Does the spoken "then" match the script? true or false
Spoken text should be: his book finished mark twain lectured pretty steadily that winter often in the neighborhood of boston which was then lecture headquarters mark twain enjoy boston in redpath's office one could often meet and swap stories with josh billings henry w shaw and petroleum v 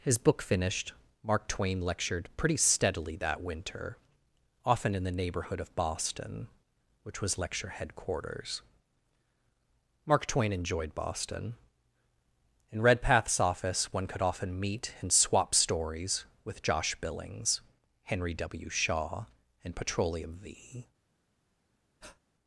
false